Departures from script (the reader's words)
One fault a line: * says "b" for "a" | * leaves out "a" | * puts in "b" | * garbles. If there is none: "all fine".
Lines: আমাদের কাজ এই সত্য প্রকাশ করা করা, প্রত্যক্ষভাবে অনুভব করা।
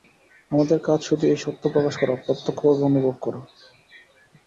* puts in "শুধু"
* leaves out "করা"